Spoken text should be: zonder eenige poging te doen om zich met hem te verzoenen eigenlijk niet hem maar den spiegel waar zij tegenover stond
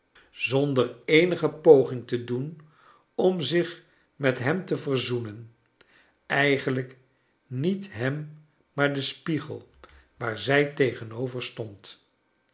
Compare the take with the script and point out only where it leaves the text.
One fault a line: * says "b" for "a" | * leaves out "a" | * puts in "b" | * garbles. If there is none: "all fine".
all fine